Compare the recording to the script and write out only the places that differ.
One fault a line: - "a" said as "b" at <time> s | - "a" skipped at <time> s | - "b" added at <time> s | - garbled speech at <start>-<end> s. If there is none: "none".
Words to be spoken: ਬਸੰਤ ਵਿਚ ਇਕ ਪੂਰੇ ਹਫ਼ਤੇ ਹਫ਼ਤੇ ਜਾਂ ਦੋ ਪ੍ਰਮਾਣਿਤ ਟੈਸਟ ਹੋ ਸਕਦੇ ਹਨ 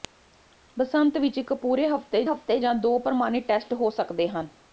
none